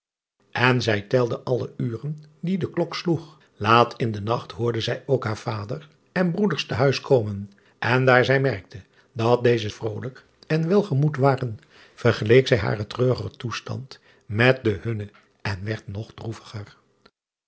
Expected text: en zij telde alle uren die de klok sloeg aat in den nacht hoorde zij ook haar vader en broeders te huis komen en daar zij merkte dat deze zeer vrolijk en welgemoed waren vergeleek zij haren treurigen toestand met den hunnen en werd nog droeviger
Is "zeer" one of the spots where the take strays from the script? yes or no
yes